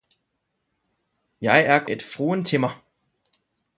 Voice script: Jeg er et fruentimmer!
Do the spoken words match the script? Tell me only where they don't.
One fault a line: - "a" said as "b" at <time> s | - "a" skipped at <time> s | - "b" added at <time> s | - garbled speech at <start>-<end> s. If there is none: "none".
none